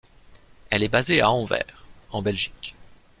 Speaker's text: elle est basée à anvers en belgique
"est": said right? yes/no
yes